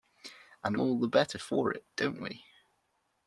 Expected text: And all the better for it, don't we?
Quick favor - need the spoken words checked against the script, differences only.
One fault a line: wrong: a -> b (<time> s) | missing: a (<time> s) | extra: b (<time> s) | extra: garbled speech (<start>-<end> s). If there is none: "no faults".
no faults